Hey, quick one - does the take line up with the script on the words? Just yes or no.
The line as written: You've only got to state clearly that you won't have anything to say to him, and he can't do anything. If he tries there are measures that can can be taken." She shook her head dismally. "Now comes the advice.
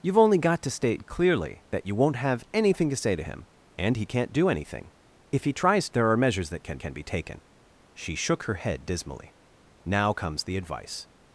yes